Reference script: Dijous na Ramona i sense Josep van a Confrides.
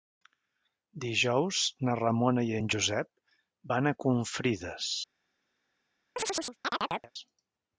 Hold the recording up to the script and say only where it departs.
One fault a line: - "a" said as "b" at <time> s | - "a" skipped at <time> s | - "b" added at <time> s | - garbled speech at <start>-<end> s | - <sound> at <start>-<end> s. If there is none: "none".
- "sense" said as "en" at 2.6 s
- chirp at 6.2-7.1 s